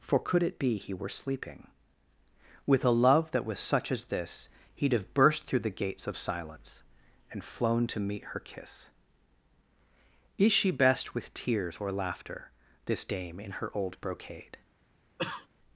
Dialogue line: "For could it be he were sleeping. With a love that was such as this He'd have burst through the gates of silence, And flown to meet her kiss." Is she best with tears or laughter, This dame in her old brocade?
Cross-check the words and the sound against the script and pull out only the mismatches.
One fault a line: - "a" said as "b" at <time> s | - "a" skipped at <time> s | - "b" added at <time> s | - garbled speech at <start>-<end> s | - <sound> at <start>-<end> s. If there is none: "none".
- cough at 15.2-15.5 s